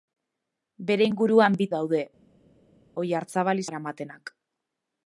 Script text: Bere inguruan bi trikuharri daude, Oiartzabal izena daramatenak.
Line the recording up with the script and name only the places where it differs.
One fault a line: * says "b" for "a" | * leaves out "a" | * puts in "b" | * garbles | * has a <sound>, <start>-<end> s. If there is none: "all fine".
* leaves out "trikuharri"
* leaves out "izena"